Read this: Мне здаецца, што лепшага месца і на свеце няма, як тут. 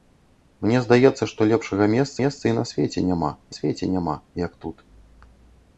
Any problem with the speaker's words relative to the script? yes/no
yes